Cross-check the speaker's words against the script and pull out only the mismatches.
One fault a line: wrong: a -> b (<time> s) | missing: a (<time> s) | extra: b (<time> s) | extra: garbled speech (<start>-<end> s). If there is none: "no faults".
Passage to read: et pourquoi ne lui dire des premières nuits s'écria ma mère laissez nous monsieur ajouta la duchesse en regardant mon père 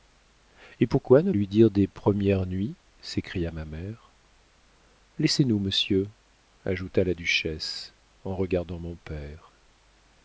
no faults